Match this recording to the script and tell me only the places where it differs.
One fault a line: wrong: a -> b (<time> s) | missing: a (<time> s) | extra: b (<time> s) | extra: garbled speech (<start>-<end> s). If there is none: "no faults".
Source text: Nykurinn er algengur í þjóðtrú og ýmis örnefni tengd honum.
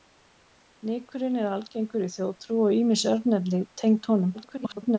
extra: garbled speech (4.3-5.0 s)